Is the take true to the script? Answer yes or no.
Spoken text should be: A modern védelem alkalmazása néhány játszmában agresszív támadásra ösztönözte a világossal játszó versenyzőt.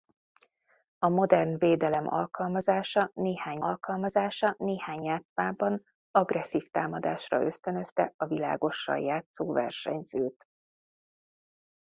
no